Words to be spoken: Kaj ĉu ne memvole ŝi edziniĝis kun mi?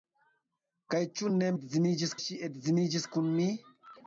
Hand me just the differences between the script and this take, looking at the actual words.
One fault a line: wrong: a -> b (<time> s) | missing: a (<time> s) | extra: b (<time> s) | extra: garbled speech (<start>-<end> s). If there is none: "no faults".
wrong: memvole -> edziniĝis (1.6 s)